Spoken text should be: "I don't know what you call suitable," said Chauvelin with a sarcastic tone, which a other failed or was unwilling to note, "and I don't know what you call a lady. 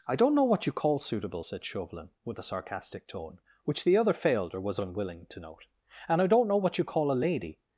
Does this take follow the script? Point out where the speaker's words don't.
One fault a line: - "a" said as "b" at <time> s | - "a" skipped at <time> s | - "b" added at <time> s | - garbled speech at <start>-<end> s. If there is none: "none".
- "a" said as "the" at 3.8 s